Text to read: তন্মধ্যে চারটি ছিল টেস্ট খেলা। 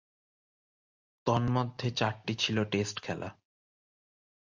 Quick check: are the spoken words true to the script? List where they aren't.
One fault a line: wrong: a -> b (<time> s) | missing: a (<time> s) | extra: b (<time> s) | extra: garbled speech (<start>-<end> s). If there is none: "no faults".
no faults